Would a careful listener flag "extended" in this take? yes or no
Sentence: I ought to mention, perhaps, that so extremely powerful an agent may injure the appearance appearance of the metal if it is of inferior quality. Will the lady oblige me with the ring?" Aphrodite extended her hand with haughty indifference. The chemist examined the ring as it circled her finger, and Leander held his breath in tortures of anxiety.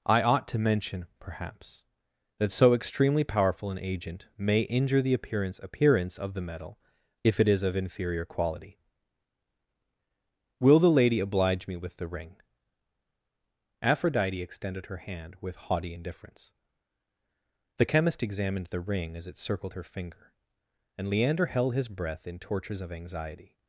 no